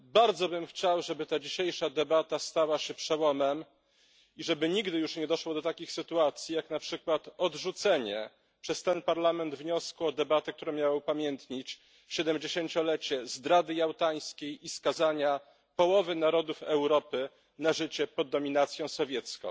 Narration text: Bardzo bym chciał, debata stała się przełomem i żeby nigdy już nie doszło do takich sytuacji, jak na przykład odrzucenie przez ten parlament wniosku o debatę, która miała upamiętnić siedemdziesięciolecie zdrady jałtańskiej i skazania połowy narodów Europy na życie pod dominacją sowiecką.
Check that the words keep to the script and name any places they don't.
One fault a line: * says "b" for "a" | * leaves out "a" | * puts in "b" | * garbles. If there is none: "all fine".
* puts in "żeby ta dzisiejsza"